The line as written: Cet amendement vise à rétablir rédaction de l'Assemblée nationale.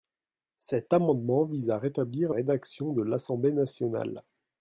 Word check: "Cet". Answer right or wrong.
right